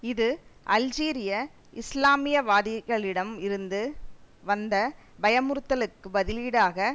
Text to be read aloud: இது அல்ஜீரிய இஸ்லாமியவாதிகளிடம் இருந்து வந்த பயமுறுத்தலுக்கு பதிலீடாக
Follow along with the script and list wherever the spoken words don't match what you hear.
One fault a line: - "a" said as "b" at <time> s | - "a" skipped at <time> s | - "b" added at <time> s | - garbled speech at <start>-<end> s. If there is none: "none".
none